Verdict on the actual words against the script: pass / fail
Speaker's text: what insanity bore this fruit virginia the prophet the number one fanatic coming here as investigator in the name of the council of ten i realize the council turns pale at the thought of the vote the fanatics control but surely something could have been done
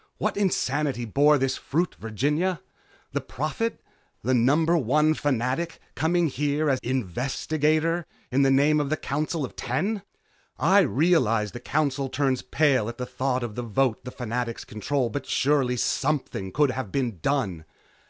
pass